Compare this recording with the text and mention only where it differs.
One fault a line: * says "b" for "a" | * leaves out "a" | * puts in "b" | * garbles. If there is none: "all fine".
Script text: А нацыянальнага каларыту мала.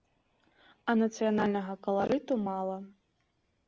all fine